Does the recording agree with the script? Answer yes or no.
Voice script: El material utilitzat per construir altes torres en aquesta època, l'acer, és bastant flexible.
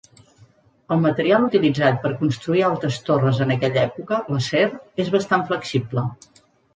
no